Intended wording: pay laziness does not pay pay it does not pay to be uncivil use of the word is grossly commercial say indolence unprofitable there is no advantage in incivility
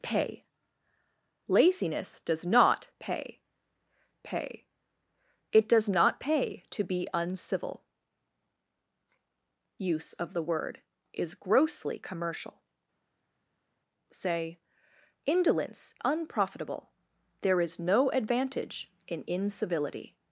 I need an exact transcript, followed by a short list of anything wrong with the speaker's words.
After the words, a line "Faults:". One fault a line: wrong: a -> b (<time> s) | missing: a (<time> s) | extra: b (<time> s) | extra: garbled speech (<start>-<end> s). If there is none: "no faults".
pay laziness does not pay pay it does not pay to be uncivil use of the word is grossly commercial say indolence unprofitable there is no advantage in incivility
Faults:
no faults